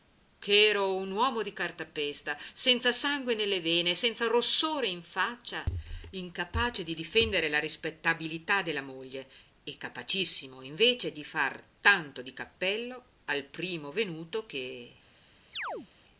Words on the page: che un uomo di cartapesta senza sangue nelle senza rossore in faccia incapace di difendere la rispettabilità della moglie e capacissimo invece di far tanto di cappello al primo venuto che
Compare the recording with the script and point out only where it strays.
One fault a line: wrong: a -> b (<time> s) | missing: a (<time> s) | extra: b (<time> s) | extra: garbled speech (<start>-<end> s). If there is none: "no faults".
extra: ero (0.7 s)
extra: vene (3.6 s)